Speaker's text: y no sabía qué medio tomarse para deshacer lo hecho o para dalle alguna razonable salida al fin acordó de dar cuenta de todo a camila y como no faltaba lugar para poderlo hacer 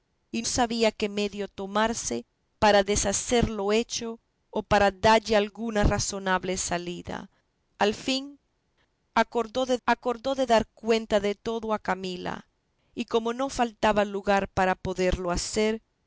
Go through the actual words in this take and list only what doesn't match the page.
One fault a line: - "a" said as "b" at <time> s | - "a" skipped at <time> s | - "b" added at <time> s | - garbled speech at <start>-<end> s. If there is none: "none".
- "no" skipped at 0.4 s
- "acordó de" added at 9.8 s